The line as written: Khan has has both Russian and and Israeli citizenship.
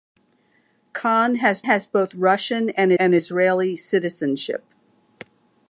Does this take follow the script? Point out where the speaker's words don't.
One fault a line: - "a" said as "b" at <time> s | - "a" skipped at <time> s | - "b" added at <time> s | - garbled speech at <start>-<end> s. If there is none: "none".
none